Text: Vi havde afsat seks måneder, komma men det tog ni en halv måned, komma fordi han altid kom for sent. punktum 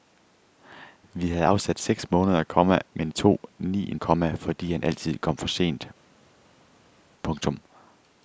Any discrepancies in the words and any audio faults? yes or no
yes